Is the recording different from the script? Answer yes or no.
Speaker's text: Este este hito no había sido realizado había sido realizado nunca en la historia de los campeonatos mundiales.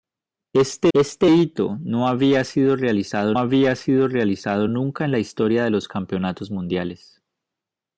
no